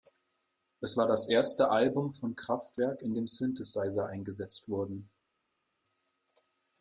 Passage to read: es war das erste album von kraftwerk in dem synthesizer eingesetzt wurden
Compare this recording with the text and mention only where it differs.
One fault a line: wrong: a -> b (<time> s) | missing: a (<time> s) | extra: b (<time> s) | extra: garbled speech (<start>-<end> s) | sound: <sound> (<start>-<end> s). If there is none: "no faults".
no faults